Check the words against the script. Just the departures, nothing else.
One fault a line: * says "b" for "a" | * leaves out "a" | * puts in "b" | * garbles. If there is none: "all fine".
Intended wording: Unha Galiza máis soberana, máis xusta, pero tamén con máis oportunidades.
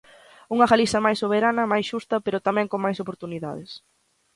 all fine